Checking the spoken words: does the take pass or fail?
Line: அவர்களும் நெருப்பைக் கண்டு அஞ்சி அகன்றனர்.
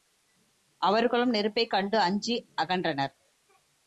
pass